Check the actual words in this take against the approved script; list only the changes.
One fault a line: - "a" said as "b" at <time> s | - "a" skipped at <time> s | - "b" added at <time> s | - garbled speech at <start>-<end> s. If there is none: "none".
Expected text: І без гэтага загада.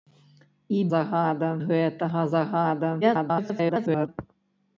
- "без" said as "загада" at 0.9 s
- garbled speech at 3.0-4.1 s